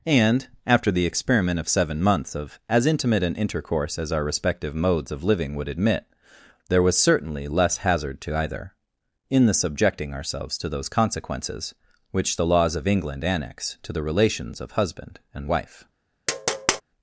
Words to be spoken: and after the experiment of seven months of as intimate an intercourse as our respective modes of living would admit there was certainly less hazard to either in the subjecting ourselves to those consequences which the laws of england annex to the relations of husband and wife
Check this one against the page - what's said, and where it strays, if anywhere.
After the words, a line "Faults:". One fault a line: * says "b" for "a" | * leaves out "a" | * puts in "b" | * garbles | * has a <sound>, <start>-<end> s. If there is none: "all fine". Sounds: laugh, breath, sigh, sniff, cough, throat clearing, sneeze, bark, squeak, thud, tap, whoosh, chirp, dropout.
and after the experiment of seven months of as intimate an intercourse as our respective modes of living would admit there was certainly less hazard to either in the subjecting ourselves to those consequences which the laws of england annex to the relations of husband and wife
Faults:
* has a tap, 16.3-16.8 s